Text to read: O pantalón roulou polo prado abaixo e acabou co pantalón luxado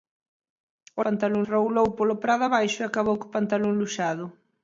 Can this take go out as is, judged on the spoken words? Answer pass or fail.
pass